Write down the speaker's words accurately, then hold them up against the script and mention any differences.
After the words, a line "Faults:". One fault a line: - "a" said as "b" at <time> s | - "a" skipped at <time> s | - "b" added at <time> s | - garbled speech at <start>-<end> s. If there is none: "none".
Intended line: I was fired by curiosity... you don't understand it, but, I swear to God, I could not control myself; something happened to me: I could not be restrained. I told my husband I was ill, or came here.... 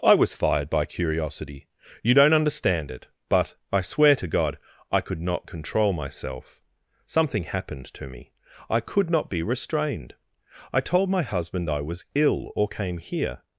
I was fired by curiosity... you don't understand it, but, I swear to God, I could not control myself; something happened to me: I could not be restrained. I told my husband I was ill, or came here....
Faults:
none